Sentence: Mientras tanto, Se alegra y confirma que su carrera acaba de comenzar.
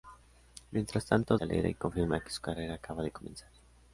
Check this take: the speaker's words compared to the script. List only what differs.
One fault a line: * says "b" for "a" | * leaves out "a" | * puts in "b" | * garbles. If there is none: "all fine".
all fine